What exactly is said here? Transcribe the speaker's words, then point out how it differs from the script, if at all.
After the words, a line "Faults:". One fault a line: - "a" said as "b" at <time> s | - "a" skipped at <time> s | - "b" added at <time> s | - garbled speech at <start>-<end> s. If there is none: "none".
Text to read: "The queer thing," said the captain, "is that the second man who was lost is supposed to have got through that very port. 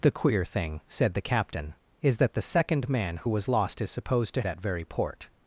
"The queer thing," said the captain, "is that the second man who was lost is supposed to that very port.
Faults:
- "have got through" skipped at 4.4 s